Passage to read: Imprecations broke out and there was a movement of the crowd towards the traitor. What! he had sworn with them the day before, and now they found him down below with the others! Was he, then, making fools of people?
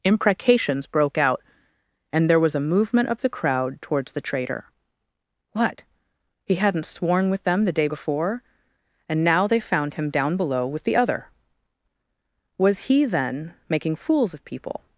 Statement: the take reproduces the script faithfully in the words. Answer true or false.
false